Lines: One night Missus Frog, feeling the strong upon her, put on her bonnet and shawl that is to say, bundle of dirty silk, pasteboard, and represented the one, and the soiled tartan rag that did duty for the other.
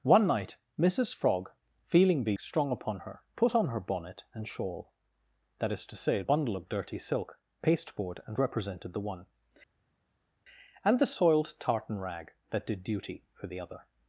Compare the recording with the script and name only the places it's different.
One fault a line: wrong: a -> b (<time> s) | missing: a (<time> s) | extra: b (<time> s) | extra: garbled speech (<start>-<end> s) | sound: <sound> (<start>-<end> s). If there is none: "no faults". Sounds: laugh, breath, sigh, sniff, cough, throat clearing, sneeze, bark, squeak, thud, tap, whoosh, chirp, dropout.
no faults